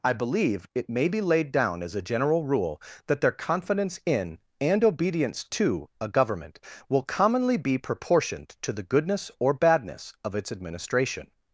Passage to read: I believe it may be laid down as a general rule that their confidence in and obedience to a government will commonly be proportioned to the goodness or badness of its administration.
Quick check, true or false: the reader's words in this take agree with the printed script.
true